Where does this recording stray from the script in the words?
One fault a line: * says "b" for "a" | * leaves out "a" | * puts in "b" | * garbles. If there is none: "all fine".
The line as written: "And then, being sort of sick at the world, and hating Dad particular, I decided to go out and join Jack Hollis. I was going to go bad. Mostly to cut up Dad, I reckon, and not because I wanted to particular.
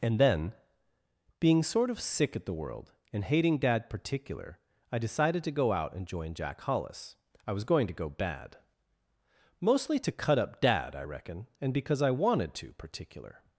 * leaves out "not"